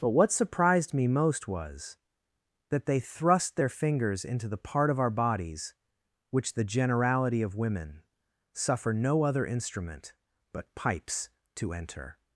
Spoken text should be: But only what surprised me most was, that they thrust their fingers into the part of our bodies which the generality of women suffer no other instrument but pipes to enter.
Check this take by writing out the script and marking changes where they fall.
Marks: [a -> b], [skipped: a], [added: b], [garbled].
But [skipped: only] what surprised me most was, that they thrust their fingers into the part of our bodies which the generality of women suffer no other instrument but pipes to enter.